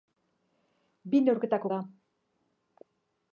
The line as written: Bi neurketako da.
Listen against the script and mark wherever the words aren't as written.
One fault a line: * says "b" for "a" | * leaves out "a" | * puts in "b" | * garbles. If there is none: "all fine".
all fine